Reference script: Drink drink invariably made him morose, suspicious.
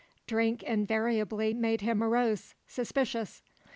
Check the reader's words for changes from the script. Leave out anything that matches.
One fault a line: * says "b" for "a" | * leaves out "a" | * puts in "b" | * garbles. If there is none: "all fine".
* leaves out "drink"